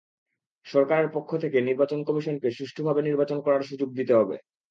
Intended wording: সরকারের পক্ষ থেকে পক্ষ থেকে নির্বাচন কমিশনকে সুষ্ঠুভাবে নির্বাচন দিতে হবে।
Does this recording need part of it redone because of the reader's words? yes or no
yes